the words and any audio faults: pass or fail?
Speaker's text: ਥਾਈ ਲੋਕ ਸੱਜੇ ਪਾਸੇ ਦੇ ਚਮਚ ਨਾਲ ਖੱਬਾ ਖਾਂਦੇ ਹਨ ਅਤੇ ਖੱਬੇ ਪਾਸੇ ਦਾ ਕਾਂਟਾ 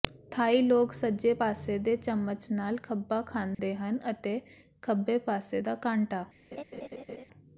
fail